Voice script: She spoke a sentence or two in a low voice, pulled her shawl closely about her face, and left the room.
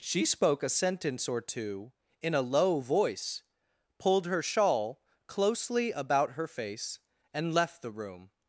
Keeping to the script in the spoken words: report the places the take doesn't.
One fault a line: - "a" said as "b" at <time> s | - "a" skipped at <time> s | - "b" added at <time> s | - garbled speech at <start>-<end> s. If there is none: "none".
none